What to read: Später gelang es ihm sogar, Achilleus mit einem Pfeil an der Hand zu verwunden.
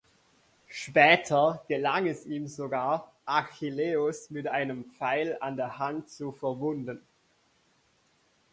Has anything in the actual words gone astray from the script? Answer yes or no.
no